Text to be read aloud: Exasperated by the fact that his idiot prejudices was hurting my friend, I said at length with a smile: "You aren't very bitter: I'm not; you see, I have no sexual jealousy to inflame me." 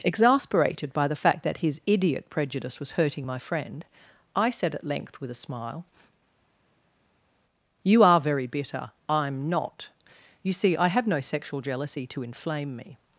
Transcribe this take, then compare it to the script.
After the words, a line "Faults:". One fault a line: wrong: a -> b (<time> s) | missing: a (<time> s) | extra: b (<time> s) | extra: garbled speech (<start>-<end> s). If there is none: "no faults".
Exasperated by the fact that his idiot prejudice was hurting my friend, I said at length with a smile: "You are very bitter: I'm not; you see, I have no sexual jealousy to inflame me."
Faults:
wrong: prejudices -> prejudice (2.3 s)
wrong: aren't -> are (8.0 s)